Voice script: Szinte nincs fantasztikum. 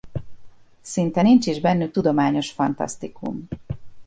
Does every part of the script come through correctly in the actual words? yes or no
no